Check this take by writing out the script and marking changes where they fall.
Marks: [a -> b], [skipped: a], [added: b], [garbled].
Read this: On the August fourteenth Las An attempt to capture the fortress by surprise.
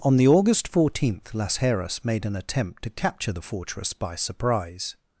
On the August fourteenth Las [added: Heras made] An attempt to capture the fortress by surprise.